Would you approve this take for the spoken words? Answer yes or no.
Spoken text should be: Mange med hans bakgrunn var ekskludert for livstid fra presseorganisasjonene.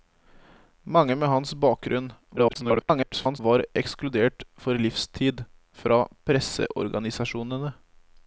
no